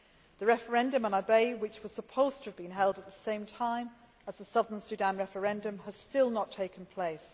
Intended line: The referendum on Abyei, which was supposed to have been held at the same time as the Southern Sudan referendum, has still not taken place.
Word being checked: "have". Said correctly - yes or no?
yes